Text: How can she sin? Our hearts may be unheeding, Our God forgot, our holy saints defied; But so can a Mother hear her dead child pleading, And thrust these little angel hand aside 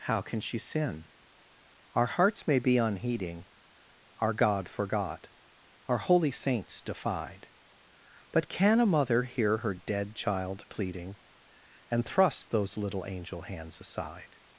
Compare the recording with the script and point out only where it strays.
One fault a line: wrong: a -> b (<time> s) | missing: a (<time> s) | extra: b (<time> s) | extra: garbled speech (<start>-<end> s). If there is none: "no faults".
missing: so (8.5 s)
wrong: these -> those (12.5 s)
wrong: hand -> hands (13.4 s)